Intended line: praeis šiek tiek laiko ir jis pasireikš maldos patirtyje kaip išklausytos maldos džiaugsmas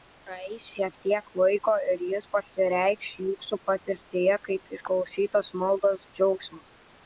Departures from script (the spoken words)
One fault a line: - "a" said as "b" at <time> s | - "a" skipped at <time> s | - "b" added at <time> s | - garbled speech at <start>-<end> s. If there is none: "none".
- "maldos" said as "jūsų" at 3.3 s